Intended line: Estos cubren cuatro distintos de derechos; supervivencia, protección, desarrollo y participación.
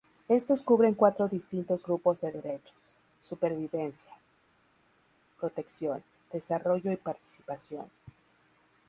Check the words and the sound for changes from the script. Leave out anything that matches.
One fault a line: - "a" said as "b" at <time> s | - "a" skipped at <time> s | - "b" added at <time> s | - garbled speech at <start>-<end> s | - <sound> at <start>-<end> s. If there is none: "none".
- "grupos" added at 1.8 s